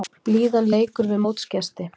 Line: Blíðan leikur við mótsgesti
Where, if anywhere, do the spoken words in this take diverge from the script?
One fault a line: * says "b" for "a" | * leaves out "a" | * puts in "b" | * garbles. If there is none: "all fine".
all fine